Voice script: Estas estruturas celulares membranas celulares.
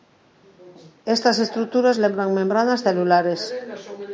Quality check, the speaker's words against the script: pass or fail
fail